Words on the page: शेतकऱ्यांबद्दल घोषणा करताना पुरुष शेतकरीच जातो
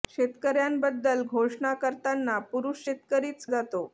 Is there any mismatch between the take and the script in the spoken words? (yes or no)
no